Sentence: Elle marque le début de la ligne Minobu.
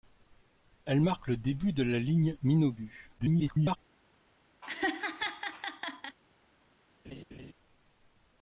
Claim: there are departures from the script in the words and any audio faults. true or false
true